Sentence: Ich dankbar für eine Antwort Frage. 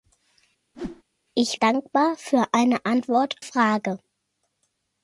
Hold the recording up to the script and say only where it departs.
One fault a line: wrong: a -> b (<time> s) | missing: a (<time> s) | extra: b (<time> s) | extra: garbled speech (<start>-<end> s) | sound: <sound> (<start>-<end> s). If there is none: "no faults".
sound: whoosh (0.7-1.0 s)